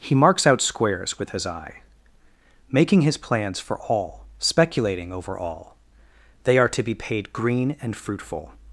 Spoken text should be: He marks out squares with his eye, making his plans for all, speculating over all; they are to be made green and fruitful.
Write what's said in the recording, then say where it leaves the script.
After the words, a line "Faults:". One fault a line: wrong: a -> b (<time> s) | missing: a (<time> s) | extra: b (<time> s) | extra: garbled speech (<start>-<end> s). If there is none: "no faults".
He marks out squares with his eye, making his plans for all, speculating over all; they are to be paid green and fruitful.
Faults:
wrong: made -> paid (6.9 s)